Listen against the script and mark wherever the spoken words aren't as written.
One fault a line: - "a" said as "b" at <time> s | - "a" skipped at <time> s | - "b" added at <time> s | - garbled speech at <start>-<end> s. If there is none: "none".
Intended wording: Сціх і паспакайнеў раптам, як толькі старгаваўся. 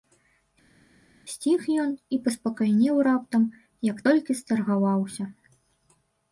- "ён" added at 1.8 s